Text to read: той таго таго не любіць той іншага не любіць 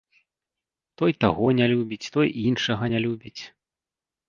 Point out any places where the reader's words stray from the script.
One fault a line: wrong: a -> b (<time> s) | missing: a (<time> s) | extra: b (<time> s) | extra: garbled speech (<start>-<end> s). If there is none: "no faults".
missing: таго (1.4 s)